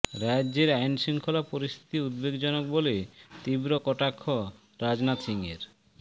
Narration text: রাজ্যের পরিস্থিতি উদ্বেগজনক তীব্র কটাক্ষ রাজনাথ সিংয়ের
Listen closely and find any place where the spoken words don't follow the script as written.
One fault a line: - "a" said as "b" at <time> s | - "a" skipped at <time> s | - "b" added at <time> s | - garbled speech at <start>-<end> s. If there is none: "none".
- "আইনশৃঙ্খলা" added at 0.8 s
- "বলে" added at 2.7 s